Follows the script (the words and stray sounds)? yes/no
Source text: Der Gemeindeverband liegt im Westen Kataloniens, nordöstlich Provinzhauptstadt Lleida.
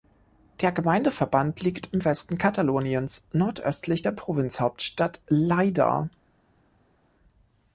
no